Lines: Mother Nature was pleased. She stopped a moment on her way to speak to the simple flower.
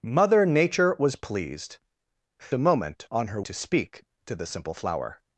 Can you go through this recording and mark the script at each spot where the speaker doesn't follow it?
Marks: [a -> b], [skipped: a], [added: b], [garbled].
Mother Nature was pleased. [skipped: She stopped] a moment on her [skipped: way] to speak to the simple flower.